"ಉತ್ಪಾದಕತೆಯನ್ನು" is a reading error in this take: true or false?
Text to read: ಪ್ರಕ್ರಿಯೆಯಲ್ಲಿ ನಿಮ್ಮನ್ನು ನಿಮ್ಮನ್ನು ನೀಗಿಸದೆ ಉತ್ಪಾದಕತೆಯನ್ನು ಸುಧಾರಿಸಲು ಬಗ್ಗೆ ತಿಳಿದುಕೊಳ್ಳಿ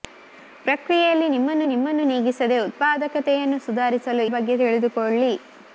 false